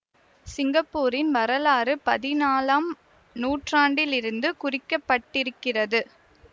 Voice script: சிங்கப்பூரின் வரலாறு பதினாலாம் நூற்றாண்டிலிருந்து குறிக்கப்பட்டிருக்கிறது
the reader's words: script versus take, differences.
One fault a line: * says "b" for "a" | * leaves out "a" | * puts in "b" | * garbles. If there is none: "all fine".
all fine